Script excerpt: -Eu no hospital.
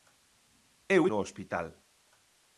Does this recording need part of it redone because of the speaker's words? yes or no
no